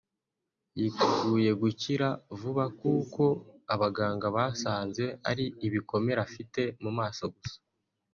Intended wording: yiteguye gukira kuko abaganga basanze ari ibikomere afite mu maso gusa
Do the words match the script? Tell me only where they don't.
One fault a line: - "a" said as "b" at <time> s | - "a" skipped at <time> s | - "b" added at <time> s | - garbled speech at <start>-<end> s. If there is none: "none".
- "vuba" added at 2.4 s